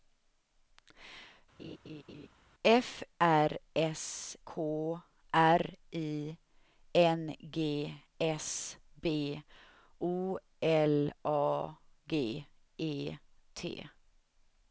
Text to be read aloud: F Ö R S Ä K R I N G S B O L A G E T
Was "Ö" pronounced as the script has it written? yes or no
no